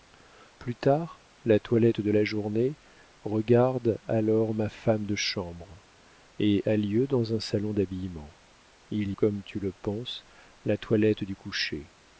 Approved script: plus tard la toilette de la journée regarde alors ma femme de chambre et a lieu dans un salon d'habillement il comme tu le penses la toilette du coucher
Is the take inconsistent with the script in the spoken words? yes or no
no